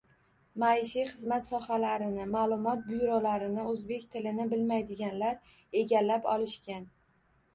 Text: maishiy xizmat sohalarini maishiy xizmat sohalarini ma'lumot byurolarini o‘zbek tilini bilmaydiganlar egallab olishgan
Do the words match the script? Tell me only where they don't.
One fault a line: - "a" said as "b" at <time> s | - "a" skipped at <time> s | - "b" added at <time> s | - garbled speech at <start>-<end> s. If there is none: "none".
- "maishiy xizmat sohalarini" skipped at 2.2 s